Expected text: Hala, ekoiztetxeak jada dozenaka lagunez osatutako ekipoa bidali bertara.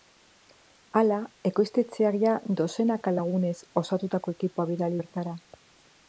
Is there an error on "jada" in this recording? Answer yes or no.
no